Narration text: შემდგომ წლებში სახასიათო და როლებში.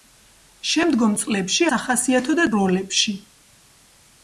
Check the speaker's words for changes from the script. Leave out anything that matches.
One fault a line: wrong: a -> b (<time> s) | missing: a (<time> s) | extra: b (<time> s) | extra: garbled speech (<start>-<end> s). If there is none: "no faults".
no faults